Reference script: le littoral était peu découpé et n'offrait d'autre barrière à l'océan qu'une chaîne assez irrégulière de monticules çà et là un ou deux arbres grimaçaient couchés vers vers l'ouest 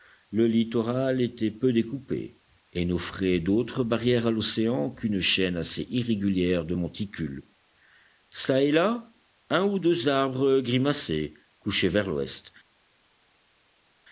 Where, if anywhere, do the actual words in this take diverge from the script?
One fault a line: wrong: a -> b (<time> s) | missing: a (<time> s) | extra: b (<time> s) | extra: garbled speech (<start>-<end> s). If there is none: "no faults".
missing: vers (12.1 s)